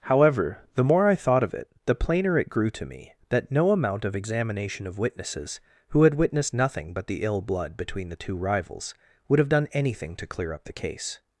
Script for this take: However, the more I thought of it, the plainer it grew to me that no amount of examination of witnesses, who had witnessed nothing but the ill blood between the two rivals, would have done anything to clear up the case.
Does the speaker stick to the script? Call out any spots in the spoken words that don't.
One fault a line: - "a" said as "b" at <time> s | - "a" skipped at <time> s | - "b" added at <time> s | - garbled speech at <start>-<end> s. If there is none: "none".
none